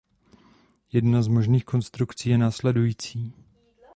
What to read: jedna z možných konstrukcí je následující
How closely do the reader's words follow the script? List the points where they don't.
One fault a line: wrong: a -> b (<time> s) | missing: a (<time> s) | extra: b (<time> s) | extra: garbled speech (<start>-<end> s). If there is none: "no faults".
no faults